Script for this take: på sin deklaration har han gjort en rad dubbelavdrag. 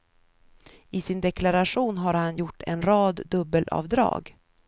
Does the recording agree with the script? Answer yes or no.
no